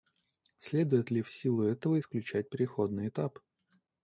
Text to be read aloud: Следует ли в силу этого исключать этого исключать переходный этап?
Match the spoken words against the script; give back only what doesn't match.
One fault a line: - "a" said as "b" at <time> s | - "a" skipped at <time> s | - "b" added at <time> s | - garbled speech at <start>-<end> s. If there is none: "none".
- "этого исключать" skipped at 2.5 s